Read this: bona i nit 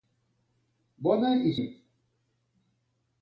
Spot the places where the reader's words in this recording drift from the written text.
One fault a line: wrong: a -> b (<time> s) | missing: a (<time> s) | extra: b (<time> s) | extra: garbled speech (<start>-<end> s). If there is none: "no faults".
no faults